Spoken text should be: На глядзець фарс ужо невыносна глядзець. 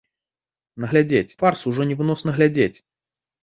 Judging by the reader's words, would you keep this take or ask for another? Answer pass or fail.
pass